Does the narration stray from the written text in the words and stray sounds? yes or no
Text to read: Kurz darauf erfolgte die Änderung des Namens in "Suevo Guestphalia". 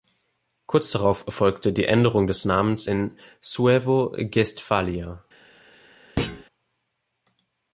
yes